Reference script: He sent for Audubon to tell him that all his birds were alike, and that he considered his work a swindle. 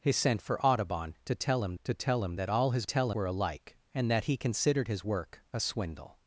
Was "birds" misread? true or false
true